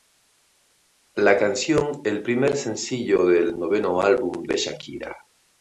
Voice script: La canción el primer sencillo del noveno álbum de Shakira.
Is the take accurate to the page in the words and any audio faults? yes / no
yes